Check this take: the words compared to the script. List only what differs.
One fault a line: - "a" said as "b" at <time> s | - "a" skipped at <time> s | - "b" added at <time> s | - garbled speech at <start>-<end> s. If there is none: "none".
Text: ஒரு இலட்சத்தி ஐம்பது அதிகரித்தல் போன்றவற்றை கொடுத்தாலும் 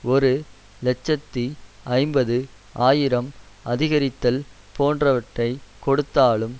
- "ஆயிரம்" added at 2.9 s